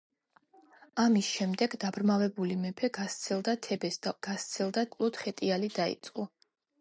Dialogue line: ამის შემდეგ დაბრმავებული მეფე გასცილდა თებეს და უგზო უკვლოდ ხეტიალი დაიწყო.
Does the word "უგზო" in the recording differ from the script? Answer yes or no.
yes